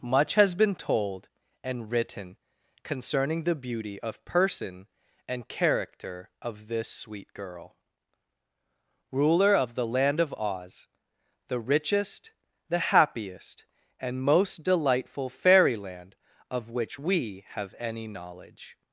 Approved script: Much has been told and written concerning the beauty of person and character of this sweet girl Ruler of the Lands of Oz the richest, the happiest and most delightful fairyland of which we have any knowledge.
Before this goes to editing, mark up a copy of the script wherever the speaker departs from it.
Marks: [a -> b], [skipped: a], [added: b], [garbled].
Much has been told and written concerning the beauty of person and character of this sweet girl Ruler of the [Lands -> Land] of Oz the richest, the happiest and most delightful fairyland of which we have any knowledge.